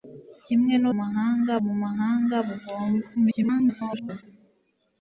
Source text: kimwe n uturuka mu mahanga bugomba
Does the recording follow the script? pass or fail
fail